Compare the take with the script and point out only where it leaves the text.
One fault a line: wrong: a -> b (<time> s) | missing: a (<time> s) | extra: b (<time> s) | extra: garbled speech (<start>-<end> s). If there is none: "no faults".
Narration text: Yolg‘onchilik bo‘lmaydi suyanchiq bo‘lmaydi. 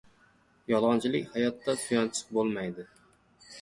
wrong: bo‘lmaydi -> hayotda (1.4 s)